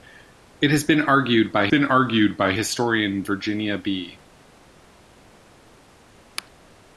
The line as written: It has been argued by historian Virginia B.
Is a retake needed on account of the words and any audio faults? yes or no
yes